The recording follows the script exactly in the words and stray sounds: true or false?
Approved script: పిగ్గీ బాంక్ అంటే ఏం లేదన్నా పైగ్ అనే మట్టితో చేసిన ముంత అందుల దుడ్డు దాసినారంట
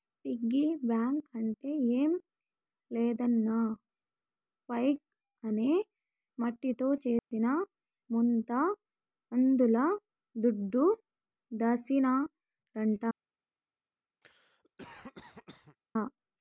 false